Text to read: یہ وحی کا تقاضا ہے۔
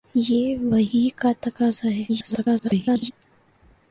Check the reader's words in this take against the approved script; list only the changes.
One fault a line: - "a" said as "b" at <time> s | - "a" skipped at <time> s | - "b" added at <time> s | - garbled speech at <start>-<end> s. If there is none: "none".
- garbled speech at 2.1-3.1 s